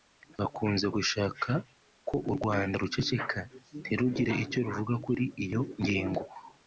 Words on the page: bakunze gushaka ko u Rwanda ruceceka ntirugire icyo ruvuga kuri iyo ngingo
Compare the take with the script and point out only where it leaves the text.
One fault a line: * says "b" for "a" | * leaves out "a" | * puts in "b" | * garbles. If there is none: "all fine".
all fine